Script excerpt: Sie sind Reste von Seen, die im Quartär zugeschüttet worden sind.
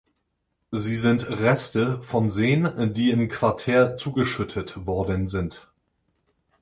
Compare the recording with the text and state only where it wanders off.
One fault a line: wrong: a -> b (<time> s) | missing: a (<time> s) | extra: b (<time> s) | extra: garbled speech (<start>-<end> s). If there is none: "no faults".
no faults